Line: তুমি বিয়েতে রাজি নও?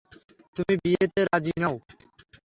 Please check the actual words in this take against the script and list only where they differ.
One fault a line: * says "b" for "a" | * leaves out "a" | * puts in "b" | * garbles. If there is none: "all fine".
all fine